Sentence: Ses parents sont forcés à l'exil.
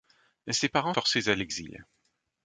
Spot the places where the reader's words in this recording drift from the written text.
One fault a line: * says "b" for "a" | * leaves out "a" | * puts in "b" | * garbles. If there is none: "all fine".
* leaves out "sont"